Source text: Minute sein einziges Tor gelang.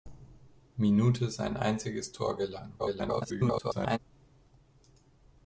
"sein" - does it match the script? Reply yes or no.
yes